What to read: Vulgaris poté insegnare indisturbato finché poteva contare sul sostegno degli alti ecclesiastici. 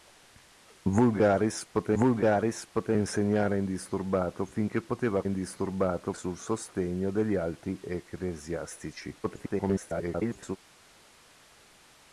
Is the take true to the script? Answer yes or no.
no